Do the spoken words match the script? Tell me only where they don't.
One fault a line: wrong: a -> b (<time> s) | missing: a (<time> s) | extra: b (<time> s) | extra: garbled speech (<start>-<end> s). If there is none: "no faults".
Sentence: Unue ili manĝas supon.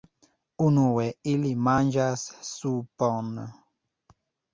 no faults